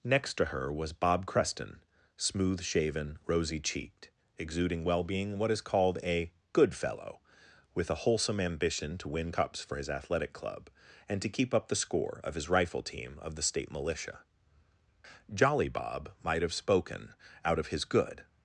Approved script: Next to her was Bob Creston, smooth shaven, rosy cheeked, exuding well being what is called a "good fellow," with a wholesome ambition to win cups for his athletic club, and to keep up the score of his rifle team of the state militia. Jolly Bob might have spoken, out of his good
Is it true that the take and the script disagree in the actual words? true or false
false